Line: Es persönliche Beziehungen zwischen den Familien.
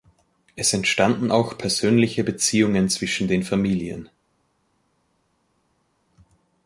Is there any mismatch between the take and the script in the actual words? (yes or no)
yes